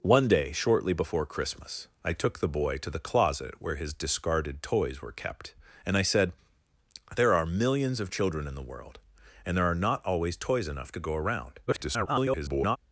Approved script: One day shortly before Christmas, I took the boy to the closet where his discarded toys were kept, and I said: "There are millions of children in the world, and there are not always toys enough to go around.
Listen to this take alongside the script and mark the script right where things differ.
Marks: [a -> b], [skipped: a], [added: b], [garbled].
One day shortly before Christmas, I took the boy to the closet where his discarded toys were kept, and I said: "There are millions of children in the world, and there are not always toys enough to go around. [garbled]